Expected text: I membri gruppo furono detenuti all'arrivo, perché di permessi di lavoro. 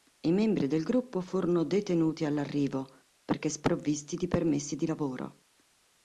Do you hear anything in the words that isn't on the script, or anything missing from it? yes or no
yes